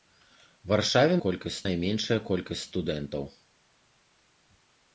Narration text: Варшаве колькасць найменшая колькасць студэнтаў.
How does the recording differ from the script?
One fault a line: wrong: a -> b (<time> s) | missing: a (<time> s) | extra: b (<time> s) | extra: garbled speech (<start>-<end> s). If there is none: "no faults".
no faults